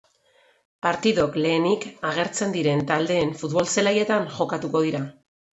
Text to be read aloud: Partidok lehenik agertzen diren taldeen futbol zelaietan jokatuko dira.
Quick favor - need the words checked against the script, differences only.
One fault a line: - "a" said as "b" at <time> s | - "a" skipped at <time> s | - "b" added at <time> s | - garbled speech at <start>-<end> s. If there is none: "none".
none